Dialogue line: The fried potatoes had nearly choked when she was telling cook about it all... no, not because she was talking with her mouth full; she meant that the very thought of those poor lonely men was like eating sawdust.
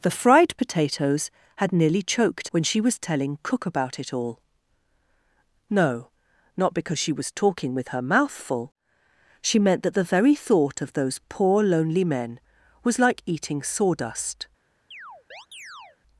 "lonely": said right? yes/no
yes